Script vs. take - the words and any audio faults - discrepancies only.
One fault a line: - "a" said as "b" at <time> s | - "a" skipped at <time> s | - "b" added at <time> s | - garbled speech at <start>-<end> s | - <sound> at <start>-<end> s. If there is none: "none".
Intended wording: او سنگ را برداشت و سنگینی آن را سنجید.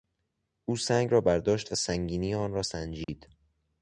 - dropout at 3.0-3.1 s